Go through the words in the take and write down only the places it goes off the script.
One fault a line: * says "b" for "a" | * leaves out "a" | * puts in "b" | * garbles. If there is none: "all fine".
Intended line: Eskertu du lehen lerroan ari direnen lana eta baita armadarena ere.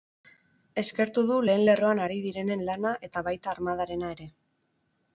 all fine